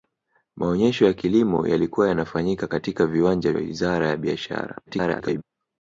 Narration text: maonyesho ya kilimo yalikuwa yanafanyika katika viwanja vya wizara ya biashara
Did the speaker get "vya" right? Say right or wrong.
wrong